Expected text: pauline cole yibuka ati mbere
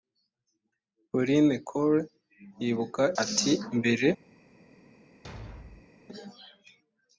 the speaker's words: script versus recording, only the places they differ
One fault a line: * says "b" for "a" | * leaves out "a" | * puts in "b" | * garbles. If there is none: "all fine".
all fine